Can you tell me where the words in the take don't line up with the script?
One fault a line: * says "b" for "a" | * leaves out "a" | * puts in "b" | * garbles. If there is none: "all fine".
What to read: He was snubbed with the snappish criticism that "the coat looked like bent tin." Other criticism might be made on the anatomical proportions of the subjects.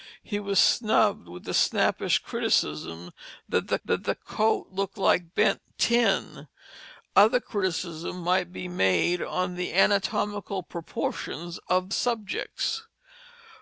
* puts in "that the"
* leaves out "the"